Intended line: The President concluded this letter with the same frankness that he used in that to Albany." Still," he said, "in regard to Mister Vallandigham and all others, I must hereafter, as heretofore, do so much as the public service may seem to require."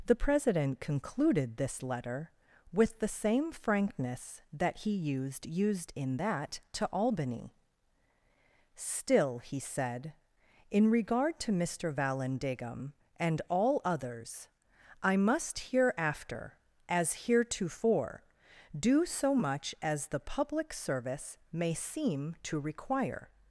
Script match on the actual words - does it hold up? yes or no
no